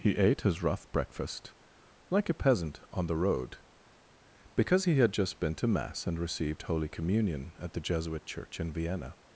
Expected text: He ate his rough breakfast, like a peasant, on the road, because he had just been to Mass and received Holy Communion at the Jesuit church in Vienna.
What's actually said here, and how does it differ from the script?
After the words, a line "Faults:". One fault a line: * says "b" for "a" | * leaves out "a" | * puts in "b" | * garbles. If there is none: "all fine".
He ate his rough breakfast, like a peasant, on the road, because he had just been to Mass and received Holy Communion at the Jesuit church in Vienna.
Faults:
all fine